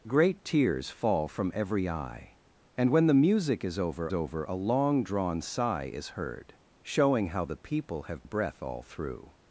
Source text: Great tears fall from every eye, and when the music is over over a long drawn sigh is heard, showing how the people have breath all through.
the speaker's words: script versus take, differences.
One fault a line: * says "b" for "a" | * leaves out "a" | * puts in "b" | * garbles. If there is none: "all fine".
all fine